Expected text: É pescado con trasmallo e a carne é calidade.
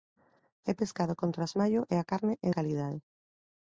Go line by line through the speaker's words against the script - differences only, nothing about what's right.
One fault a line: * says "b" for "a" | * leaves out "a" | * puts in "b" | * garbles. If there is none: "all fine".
all fine